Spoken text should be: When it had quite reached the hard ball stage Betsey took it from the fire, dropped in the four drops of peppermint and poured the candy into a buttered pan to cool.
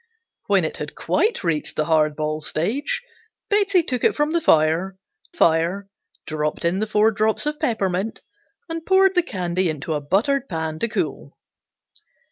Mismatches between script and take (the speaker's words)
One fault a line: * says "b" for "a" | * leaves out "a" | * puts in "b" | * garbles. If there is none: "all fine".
* puts in "fire"